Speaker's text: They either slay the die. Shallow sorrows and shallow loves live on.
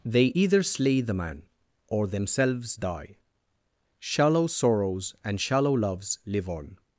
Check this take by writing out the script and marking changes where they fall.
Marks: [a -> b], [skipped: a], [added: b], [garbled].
They either slay the [added: man or themselves] die. Shallow sorrows and shallow loves live on.